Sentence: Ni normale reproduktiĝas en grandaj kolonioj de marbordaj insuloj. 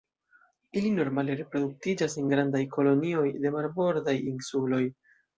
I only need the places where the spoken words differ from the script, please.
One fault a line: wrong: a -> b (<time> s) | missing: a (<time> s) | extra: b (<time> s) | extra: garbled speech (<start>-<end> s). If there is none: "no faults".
wrong: Ni -> Ili (0.8 s)